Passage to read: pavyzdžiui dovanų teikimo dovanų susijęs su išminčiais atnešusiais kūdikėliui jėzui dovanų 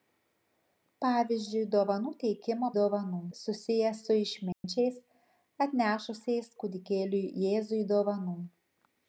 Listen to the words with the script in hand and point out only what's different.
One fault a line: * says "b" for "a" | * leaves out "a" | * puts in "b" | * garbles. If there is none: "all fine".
all fine